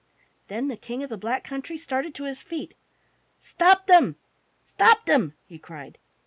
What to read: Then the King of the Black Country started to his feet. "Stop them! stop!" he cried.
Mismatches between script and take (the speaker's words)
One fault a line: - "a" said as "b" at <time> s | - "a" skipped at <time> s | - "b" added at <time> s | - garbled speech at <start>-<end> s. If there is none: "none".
- "them" added at 5.0 s